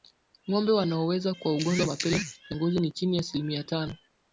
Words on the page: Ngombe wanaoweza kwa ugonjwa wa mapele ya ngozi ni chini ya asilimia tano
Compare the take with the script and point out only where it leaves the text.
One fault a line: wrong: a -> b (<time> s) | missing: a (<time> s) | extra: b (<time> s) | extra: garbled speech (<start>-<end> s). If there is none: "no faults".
no faults